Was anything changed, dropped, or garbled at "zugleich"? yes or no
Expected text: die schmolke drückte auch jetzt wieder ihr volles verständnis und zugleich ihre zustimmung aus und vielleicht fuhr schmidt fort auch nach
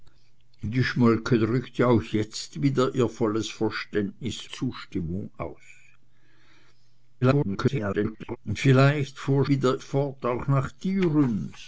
yes